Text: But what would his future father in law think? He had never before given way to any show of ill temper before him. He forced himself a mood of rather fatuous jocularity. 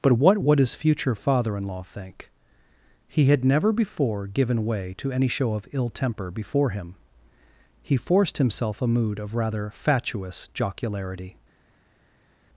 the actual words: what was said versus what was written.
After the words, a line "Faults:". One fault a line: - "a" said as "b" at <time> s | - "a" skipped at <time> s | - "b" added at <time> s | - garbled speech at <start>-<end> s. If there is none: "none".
But what would his future father in law think? He had never before given way to any show of ill temper before him. He forced himself a mood of rather fatuous jocularity.
Faults:
none